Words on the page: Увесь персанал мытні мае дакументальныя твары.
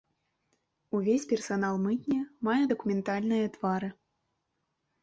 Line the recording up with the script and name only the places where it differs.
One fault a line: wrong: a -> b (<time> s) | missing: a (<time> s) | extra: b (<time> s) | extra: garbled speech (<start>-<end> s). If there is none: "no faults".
no faults